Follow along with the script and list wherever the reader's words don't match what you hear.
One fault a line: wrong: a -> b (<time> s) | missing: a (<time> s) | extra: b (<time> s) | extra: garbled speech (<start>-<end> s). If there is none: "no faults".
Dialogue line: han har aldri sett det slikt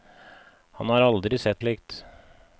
missing: det (1.6 s)